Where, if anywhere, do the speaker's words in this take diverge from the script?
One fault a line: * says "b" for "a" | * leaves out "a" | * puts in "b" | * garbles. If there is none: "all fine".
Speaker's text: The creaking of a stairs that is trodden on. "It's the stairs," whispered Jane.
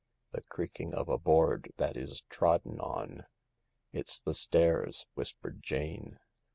* says "board" for "stairs"